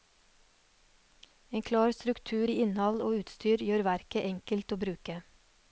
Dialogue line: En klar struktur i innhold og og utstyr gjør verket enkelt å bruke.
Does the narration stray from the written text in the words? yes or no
yes